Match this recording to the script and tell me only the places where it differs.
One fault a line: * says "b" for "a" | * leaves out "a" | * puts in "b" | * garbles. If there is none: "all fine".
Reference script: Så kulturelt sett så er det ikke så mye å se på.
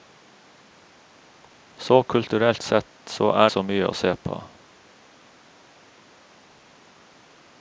* leaves out "det ikke"